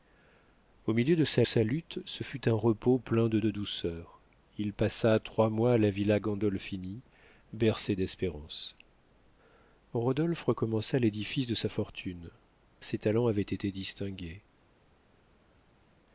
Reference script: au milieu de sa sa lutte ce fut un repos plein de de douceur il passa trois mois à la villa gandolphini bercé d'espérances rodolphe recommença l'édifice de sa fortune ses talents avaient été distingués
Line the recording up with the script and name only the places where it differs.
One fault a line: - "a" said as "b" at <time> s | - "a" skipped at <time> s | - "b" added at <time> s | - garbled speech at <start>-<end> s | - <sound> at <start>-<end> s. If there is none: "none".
none